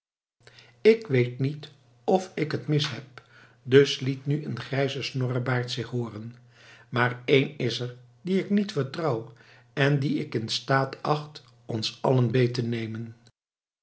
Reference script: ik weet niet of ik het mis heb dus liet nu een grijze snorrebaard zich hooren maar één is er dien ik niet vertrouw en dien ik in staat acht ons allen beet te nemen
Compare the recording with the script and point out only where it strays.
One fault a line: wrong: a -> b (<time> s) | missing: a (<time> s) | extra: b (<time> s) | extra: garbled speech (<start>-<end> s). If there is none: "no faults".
no faults